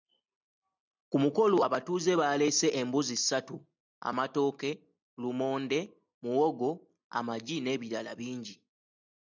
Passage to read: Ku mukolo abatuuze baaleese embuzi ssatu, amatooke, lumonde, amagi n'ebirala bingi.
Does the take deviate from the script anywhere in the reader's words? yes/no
yes